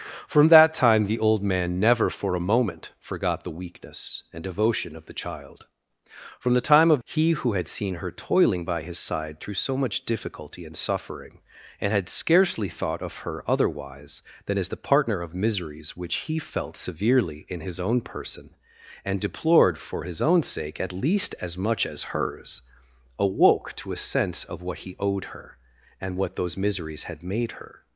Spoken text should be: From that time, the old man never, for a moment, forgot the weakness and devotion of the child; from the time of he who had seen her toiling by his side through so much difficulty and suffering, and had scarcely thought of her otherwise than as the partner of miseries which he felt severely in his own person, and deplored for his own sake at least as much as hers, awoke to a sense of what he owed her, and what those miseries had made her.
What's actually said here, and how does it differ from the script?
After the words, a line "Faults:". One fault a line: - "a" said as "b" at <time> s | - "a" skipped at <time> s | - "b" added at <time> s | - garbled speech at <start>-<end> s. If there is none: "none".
From that time, the old man never, for a moment, forgot the weakness and devotion of the child; from the time of he who had seen her toiling by his side through so much difficulty and suffering, and had scarcely thought of her otherwise than as the partner of miseries which he felt severely in his own person, and deplored for his own sake at least as much as hers, awoke to a sense of what he owed her, and what those miseries had made her.
Faults:
none